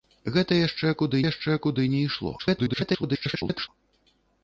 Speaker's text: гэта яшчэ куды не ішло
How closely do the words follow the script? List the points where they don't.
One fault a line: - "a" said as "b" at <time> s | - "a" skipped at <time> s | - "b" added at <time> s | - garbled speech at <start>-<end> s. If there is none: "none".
- "яшчэ куды" added at 1.2 s
- garbled speech at 2.4-3.7 s